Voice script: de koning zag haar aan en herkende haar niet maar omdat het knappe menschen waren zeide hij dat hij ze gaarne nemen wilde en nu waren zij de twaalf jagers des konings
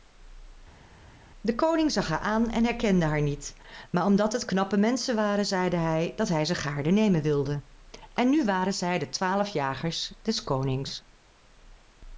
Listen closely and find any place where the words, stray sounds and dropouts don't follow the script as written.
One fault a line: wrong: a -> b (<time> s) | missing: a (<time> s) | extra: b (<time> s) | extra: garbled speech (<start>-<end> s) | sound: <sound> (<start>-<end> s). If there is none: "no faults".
no faults